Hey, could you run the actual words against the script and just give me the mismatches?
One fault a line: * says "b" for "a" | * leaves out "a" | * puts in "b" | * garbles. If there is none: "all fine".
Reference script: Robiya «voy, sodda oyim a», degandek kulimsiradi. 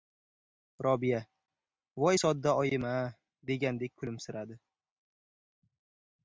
all fine